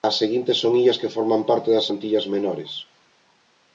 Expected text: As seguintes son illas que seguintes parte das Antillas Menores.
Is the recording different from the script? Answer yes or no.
yes